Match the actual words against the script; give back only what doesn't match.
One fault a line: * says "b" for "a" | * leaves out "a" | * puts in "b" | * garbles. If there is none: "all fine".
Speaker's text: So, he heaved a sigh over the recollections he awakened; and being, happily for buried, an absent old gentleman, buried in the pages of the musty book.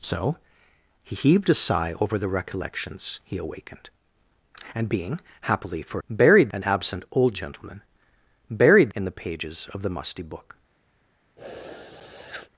all fine